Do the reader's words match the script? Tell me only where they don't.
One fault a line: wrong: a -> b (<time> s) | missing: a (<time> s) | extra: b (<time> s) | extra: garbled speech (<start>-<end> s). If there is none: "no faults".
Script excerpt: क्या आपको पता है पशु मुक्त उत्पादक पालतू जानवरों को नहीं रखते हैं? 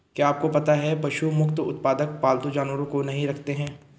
no faults